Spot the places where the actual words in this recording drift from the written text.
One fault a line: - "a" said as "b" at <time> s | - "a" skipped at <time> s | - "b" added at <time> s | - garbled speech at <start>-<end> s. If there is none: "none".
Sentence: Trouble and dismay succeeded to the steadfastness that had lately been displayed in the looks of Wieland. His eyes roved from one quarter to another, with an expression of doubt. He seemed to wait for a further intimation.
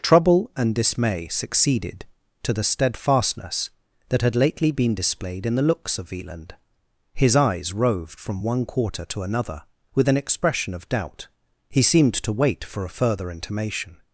none